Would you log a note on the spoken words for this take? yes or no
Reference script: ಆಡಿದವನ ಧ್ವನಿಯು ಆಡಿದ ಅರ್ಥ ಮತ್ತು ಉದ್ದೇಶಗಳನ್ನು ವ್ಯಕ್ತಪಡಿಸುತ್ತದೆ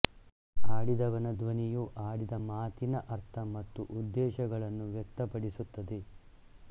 yes